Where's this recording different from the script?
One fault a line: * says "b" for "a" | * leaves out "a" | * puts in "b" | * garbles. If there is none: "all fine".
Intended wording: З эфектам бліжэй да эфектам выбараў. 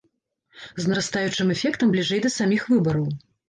* puts in "нарастаючым"
* says "саміх" for "эфектам"